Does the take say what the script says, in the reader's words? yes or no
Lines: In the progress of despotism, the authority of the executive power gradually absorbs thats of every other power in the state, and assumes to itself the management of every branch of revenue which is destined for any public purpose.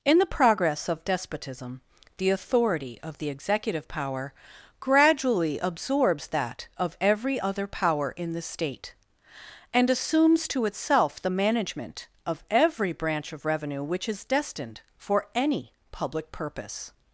no